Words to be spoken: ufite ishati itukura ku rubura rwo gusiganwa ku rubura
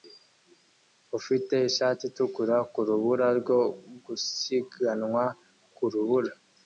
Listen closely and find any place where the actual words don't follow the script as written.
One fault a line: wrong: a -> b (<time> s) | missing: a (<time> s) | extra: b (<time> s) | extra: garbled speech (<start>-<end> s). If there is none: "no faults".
no faults